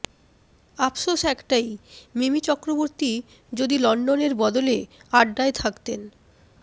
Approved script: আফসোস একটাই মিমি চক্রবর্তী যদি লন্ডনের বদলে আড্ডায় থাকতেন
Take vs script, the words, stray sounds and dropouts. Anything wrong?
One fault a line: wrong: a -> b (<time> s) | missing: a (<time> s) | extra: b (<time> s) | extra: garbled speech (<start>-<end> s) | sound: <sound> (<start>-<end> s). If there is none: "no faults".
no faults